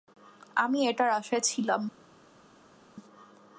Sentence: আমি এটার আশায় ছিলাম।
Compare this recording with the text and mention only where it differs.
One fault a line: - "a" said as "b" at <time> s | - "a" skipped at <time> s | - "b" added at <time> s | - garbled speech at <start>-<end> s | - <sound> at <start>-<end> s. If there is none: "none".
none